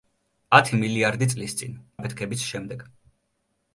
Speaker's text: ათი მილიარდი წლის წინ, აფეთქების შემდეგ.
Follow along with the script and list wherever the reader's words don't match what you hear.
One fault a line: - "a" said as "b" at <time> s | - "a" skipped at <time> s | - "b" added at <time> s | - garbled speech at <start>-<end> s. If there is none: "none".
none